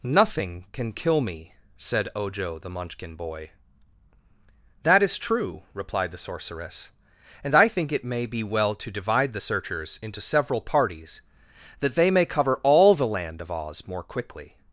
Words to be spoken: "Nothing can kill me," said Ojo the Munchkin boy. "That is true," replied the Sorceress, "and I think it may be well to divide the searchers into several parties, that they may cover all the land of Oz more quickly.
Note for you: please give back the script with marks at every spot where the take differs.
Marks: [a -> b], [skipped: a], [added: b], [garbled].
"Nothing can kill me," said Ojo the Munchkin boy. "That is true," replied the Sorceress, "and I think it may be well to divide the searchers into several parties, that they may cover all the land of Oz more quickly.